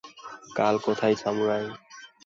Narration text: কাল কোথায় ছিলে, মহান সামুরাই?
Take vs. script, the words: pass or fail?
fail